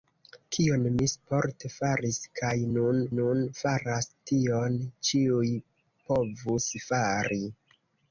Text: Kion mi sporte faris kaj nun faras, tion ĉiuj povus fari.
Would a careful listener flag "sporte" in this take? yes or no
no